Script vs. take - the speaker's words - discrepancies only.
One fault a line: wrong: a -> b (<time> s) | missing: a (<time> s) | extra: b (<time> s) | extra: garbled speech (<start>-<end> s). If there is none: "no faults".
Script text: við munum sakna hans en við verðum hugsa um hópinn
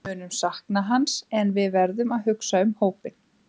extra: að (2.2 s)